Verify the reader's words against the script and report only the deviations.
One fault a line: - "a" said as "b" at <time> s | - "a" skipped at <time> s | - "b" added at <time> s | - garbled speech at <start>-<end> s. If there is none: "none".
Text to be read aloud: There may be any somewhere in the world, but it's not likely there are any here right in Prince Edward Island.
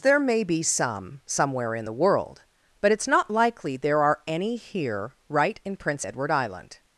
- "any" said as "some" at 0.6 s